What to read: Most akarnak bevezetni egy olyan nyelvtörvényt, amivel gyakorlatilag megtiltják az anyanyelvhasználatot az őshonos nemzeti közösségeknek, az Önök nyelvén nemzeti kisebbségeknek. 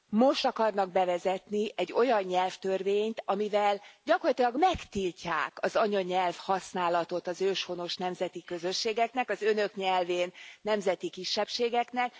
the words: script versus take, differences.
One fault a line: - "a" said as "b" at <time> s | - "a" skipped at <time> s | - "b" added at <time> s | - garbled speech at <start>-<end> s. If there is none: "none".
none